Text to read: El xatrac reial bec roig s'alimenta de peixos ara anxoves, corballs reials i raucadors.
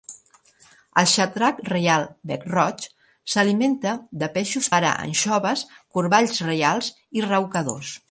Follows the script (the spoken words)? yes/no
yes